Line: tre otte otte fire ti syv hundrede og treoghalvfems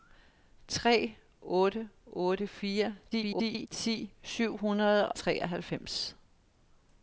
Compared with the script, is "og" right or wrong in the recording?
wrong